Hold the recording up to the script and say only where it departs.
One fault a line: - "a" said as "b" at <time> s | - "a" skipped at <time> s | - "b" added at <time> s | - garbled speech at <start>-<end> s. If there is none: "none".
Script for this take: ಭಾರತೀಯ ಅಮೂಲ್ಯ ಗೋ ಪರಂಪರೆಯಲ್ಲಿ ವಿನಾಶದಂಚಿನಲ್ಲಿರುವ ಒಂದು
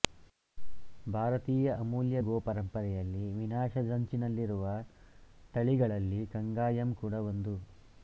- "ತಳಿಗಳಲ್ಲಿ ಕಂಗಾಯಮ್ ಕೂಡ" added at 5.5 s